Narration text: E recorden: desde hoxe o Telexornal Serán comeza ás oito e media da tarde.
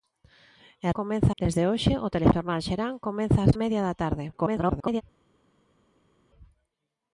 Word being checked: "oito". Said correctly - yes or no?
no